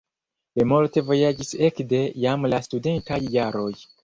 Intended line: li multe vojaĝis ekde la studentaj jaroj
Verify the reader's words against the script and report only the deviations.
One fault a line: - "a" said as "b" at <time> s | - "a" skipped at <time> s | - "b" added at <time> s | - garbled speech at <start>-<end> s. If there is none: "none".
- "jam" added at 2.3 s